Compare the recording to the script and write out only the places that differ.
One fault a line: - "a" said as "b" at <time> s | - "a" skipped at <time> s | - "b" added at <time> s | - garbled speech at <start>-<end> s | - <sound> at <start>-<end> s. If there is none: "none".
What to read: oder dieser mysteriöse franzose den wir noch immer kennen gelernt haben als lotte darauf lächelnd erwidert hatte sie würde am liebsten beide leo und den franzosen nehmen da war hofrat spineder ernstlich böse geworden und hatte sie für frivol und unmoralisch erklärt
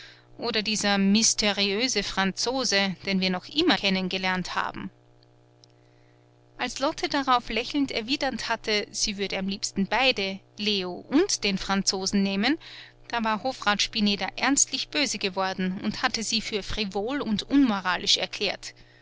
none